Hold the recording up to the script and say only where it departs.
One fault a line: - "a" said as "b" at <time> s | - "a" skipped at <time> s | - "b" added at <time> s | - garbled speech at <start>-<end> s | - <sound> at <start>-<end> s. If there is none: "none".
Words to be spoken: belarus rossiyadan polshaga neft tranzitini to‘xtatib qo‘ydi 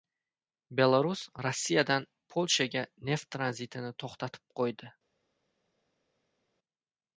none